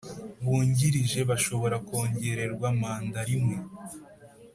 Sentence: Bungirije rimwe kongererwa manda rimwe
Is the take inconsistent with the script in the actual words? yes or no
yes